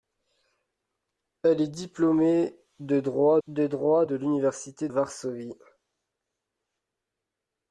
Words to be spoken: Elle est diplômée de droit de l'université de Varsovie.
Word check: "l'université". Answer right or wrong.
wrong